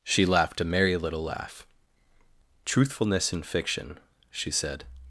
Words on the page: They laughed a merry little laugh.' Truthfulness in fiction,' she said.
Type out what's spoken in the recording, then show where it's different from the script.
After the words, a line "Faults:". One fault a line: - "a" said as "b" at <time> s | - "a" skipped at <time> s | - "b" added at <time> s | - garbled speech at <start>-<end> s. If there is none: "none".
She laughed a merry little laugh.' Truthfulness in fiction,' she said.
Faults:
- "They" said as "She" at 0.0 s